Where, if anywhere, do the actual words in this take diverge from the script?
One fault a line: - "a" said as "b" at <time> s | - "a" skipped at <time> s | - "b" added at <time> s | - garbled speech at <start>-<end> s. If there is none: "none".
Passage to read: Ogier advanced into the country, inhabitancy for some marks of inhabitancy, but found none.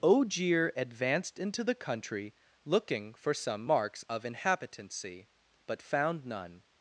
- "inhabitancy" said as "looking" at 2.6 s